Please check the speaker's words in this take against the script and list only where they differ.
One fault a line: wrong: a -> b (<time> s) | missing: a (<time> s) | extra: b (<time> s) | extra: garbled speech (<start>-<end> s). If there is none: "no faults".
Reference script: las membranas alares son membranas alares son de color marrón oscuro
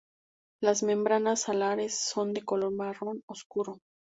missing: membranas alares son (2.3 s)